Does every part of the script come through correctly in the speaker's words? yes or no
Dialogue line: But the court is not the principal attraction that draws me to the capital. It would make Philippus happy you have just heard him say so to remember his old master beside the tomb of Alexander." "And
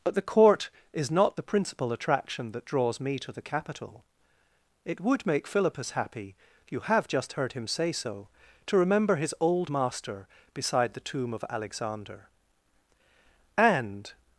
yes